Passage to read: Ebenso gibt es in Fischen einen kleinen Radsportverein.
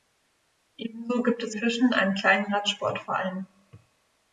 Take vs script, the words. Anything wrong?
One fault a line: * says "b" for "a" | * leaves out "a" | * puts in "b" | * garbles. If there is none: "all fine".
* leaves out "in"